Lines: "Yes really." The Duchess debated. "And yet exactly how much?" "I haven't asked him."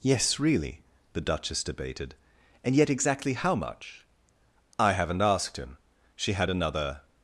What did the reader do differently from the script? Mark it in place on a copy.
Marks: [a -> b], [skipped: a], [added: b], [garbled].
"Yes really." The Duchess debated. "And yet exactly how much?" "I haven't asked him." [added: She had another]